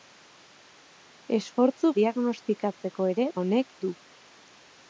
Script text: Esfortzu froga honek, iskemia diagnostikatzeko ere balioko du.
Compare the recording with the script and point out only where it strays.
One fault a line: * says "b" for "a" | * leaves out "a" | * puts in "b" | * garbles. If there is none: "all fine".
* leaves out "froga honek iskemia"
* says "honek" for "balioko"